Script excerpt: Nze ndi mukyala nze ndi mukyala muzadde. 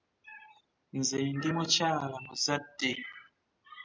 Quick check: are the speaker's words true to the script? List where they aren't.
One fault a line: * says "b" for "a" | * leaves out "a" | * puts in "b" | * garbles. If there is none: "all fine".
* leaves out "nze ndi mukyala"